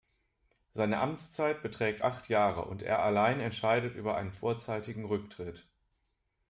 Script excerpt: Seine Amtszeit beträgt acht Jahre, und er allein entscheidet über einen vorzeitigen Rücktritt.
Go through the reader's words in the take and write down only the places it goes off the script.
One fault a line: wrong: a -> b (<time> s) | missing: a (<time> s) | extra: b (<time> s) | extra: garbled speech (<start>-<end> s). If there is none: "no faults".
no faults